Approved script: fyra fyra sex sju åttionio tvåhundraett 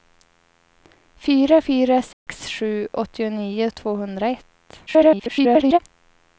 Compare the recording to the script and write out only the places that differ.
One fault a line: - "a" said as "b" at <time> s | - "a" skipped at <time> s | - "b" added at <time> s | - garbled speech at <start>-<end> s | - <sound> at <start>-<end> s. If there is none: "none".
- dropout at 2.1-2.3 s
- garbled speech at 4.9-5.8 s